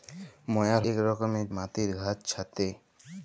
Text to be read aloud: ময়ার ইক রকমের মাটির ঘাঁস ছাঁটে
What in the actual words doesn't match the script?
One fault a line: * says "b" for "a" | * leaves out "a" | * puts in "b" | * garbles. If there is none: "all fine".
all fine